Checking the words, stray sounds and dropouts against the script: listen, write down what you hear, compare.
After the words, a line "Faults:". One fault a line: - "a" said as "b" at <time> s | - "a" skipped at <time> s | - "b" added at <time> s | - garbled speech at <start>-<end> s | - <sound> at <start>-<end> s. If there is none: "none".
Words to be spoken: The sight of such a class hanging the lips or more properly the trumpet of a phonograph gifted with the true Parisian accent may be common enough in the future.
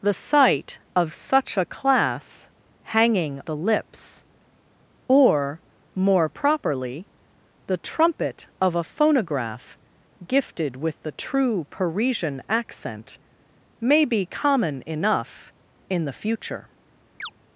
The sight of such a class hanging the lips or more properly the trumpet of a phonograph gifted with the true Parisian accent may be common enough in the future.
Faults:
- chirp at 17.2-17.3 s